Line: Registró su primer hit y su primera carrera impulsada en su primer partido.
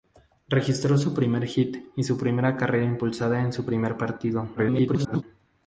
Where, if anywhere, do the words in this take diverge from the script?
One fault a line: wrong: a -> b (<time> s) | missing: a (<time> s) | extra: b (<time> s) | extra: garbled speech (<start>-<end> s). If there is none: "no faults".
extra: garbled speech (4.6-5.2 s)